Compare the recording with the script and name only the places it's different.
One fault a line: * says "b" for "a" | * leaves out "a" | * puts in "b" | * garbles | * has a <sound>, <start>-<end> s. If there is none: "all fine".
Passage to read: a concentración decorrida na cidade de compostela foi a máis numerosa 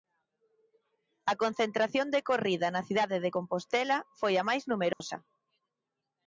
* has a dropout, 4.9-5.0 s